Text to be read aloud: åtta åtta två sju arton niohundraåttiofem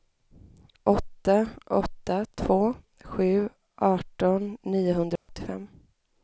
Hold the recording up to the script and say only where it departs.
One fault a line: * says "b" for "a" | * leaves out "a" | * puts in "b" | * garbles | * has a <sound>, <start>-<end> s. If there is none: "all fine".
* has a dropout, 5.2-5.3 s